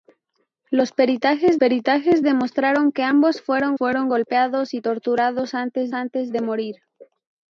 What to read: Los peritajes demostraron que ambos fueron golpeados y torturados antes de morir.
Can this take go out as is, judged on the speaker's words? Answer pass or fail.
fail